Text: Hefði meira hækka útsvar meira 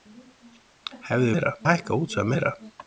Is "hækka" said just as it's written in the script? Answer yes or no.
yes